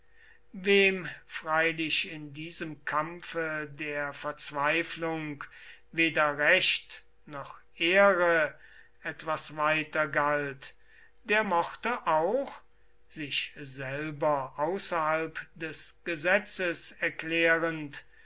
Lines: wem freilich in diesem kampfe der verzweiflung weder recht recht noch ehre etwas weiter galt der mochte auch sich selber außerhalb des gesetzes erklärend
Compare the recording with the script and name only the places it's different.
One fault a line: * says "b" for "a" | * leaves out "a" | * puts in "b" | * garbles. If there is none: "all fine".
* leaves out "recht"